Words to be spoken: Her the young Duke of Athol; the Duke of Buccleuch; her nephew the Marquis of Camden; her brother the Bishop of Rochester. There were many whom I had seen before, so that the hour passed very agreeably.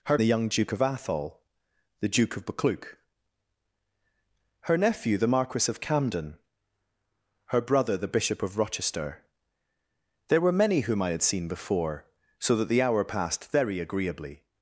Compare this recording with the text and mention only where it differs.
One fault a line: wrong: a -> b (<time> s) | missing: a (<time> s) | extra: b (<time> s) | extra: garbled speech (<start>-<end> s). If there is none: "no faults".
no faults